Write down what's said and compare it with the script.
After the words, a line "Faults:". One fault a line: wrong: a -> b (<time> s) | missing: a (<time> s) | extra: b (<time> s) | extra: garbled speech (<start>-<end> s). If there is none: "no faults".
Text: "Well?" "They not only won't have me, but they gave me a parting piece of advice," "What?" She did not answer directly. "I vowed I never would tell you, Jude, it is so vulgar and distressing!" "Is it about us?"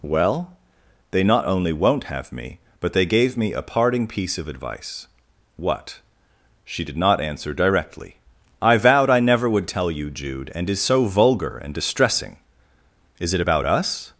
"Well?" "They not only won't have me, but they gave me a parting piece of advice," "What?" She did not answer directly. "I vowed I never would tell you, Jude, and is so vulgar and distressing!" "Is it about us?"
Faults:
wrong: it -> and (10.6 s)